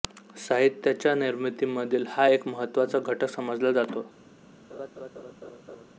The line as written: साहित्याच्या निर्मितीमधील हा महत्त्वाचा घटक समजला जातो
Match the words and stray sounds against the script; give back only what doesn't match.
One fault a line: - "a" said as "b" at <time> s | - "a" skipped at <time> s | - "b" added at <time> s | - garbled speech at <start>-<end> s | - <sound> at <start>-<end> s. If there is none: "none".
- "एक" added at 2.3 s
- laugh at 4.7-5.9 s